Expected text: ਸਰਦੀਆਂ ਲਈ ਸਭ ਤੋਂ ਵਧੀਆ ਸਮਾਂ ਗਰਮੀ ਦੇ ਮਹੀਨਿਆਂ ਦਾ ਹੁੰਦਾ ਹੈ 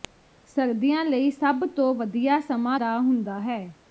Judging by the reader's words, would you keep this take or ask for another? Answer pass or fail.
fail